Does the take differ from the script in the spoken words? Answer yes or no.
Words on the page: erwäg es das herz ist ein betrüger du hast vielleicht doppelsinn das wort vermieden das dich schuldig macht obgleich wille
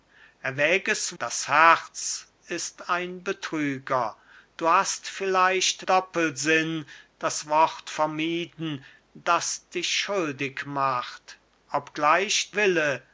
no